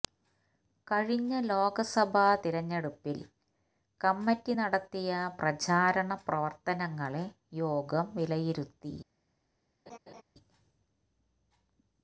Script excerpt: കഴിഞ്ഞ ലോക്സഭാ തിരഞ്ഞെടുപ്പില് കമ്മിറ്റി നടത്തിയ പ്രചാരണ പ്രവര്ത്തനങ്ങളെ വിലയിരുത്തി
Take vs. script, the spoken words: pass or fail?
fail